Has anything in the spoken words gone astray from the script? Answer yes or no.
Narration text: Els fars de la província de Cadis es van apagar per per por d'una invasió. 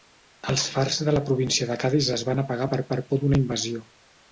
no